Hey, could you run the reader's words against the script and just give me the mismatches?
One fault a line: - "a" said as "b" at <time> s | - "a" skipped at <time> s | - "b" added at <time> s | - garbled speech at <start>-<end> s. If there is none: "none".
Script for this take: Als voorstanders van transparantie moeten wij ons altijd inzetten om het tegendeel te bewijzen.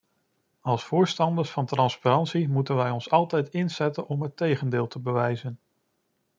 none